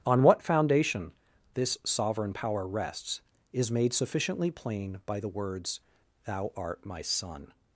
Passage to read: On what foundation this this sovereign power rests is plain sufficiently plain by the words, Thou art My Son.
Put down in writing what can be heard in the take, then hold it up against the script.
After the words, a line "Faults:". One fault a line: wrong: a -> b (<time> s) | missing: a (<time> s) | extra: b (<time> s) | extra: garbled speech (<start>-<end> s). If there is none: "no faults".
On what foundation this sovereign power rests is made sufficiently plain by the words, Thou art My Son.
Faults:
missing: this (1.8 s)
wrong: plain -> made (3.7 s)